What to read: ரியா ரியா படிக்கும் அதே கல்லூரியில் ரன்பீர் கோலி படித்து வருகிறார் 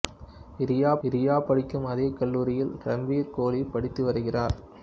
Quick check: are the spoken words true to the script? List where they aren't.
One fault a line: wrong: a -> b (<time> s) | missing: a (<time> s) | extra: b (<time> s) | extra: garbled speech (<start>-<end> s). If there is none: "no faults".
no faults